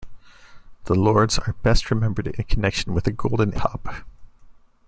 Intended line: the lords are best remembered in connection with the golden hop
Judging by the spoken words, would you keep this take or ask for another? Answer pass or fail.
pass